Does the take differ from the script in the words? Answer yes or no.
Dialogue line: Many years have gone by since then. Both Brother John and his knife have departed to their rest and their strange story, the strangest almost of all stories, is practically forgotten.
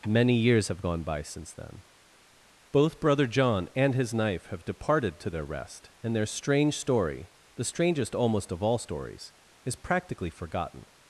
no